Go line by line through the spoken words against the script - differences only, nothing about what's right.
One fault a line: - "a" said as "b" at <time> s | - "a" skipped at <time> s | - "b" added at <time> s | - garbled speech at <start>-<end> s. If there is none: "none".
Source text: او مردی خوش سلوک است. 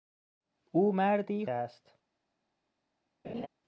- "خوش سلوک" skipped at 1.4 s